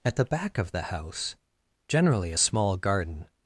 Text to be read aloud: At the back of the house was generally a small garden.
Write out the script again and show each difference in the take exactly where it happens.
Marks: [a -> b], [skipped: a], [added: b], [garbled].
At the back of the house [skipped: was] generally a small garden.